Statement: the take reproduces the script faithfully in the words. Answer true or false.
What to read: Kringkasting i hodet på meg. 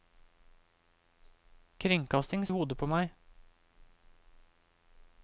true